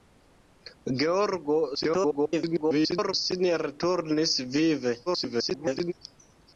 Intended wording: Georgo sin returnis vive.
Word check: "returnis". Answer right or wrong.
right